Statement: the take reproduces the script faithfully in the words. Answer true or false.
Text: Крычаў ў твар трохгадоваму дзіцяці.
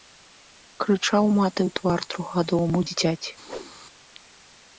false